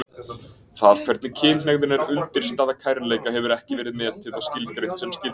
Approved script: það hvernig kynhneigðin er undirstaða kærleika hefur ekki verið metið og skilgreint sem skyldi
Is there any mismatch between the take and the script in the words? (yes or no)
no